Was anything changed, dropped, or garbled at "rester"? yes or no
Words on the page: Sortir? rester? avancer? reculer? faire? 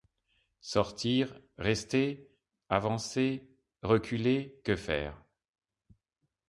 no